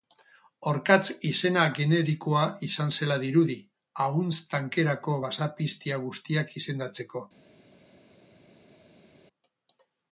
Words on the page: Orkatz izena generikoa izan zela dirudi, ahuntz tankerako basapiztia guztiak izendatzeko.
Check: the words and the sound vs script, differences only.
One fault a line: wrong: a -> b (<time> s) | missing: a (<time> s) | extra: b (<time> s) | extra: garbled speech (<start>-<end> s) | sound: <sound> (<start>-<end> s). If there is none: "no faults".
no faults